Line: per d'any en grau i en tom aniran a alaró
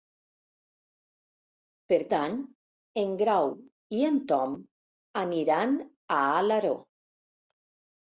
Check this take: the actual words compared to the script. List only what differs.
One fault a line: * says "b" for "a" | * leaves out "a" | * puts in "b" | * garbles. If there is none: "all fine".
all fine